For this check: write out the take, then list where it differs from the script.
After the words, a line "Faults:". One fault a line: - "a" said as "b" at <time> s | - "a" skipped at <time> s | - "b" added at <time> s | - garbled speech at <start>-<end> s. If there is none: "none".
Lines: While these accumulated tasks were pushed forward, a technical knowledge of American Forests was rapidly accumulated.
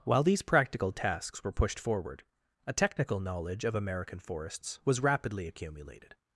While these practical tasks were pushed forward, a technical knowledge of American Forests was rapidly accumulated.
Faults:
- "accumulated" said as "practical" at 0.4 s